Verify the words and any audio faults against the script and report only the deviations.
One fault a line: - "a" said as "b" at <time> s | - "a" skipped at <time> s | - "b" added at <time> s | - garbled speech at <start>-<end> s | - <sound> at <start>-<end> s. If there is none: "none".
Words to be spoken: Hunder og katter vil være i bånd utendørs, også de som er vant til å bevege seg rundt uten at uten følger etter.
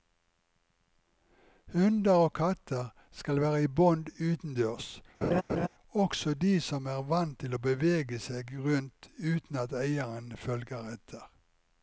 - "vil" said as "skal" at 3.1 s
- laugh at 5.2-5.7 s
- "uten" said as "eieren" at 9.7 s